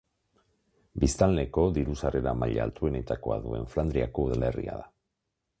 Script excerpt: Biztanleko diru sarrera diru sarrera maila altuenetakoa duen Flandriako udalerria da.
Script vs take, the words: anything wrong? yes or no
yes